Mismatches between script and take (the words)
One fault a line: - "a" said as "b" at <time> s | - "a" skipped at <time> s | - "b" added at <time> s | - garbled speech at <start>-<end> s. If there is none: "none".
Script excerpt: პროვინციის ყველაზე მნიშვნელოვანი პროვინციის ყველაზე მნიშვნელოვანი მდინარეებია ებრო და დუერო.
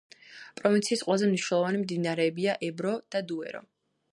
- "პროვინციის ყველაზე მნიშვნელოვანი" skipped at 1.8 s